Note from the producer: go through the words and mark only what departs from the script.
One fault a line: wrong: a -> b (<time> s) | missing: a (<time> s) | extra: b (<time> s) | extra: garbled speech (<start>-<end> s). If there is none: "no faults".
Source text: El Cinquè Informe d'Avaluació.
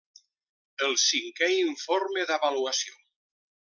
no faults